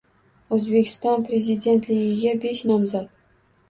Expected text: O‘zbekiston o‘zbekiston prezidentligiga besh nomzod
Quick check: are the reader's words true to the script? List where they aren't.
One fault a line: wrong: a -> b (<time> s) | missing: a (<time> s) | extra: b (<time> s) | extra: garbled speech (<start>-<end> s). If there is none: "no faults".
missing: o‘zbekiston (1.3 s)